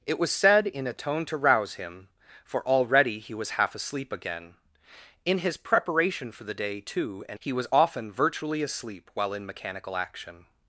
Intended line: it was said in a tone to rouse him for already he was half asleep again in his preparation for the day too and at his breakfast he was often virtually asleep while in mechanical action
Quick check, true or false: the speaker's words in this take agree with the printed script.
false